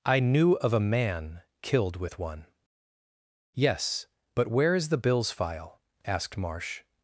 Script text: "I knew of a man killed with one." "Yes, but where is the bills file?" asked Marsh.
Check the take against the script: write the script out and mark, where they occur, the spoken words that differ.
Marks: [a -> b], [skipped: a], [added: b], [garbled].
"I knew of a man killed with one." "Yes, but where is the bills file?" asked Marsh.